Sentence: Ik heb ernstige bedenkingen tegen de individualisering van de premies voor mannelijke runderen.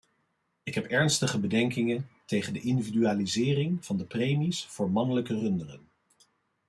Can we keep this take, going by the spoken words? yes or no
yes